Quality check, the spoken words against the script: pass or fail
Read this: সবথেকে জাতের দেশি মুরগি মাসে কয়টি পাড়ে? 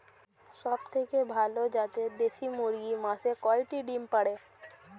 fail